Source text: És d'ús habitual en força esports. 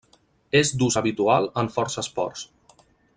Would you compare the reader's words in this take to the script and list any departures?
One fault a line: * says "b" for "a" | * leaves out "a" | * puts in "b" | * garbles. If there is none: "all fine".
all fine